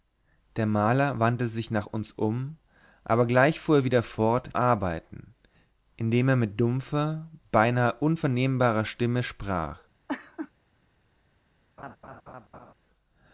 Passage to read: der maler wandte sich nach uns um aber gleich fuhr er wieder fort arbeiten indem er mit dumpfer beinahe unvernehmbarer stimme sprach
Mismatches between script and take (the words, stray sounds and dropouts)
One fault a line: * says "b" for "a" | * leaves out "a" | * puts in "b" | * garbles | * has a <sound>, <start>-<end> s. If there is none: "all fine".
* has a laugh, 10.1-10.5 s
* has a laugh, 11.8-12.7 s